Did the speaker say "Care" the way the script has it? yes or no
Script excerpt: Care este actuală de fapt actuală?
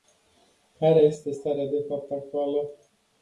yes